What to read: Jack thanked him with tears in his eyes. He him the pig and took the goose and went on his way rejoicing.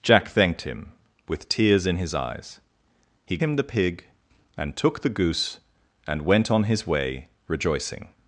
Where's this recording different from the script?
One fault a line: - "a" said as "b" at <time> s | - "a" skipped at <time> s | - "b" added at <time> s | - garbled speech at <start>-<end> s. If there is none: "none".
none